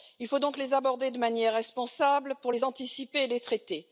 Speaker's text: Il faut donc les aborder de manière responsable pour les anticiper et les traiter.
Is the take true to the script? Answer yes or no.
yes